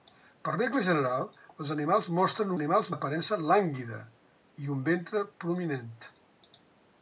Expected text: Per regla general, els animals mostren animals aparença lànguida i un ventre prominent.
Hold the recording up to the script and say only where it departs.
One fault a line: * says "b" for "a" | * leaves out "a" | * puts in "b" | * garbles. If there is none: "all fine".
all fine